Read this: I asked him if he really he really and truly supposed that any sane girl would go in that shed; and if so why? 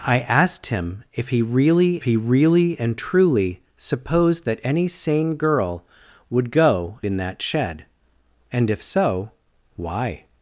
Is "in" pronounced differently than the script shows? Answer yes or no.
no